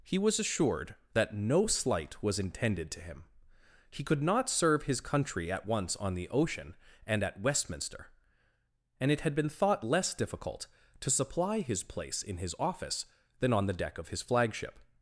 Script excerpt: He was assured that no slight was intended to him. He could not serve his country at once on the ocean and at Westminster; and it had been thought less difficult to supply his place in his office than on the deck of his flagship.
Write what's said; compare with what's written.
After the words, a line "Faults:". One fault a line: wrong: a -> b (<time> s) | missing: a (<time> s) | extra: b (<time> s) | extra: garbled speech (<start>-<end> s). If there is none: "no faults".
He was assured that no slight was intended to him. He could not serve his country at once on the ocean and at Westminster; and it had been thought less difficult to supply his place in his office than on the deck of his flagship.
Faults:
no faults